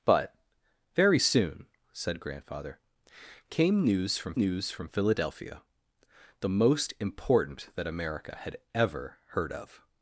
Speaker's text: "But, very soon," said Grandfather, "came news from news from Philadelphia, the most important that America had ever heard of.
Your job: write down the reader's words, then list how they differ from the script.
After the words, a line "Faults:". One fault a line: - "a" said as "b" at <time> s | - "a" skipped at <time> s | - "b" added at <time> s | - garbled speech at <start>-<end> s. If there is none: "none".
"But, very soon," said Grandfather, "came news from news from Philadelphia, the most important that America had ever heard of.
Faults:
none